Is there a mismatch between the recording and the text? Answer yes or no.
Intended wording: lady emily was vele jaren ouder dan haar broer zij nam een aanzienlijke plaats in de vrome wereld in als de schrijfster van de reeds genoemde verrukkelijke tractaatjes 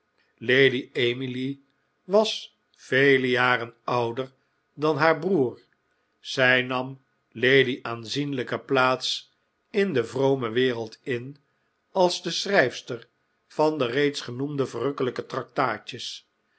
yes